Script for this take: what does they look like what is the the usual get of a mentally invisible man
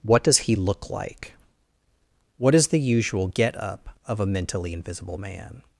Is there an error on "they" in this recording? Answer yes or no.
yes